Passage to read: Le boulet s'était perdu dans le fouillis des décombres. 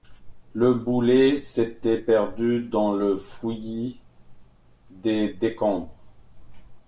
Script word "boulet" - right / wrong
right